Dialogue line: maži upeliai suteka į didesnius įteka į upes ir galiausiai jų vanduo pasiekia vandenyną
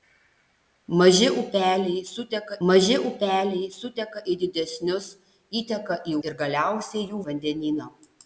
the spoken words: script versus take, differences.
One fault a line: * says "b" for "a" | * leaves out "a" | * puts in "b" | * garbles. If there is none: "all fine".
* puts in "maži upeliai suteka"
* leaves out "upes"
* leaves out "vanduo pasiekia"